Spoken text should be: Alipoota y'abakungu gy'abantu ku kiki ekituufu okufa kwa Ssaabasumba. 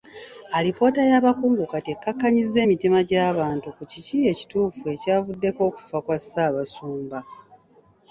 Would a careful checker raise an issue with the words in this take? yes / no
yes